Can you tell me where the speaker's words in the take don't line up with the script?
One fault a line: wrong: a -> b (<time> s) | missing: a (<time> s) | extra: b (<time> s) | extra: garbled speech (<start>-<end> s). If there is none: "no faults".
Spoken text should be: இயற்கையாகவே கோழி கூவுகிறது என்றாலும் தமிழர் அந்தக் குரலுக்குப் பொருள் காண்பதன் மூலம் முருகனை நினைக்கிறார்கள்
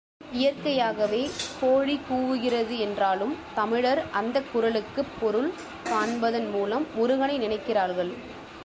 no faults